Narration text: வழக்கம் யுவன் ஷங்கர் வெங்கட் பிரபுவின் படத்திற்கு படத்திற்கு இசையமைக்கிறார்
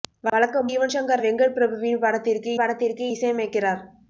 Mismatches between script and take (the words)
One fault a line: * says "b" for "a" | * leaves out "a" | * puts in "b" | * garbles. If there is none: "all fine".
all fine